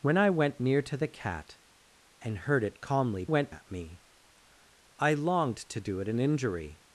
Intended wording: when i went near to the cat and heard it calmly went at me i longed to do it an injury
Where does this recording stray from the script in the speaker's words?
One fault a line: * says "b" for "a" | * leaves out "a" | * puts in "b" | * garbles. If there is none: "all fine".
all fine